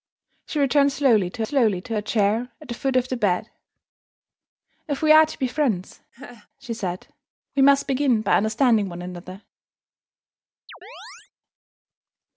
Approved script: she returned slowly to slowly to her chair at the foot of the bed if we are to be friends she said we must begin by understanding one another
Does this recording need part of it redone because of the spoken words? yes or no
no